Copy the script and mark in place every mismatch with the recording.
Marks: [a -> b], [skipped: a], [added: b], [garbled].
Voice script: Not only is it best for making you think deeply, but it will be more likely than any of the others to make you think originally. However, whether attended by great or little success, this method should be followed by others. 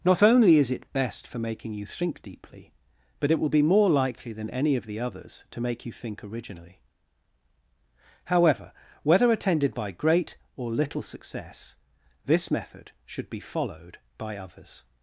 Not only is it best for making you think deeply, but it will be more likely than any of the others to make you think originally. However, whether attended by great or little success, this method should be followed by others.